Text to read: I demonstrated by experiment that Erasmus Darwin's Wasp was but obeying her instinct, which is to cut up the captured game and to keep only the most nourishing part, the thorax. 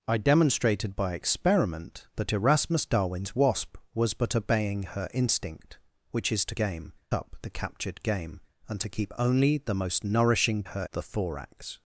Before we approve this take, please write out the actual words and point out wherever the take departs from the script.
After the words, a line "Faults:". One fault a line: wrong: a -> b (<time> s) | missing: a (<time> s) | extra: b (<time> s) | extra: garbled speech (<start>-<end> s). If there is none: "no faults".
I demonstrated by experiment that Erasmus Darwin's Wasp was but obeying her instinct, which is to game up the captured game and to keep only the most nourishing her, the thorax.
Faults:
wrong: cut -> game (6.6 s)
wrong: part -> her (10.6 s)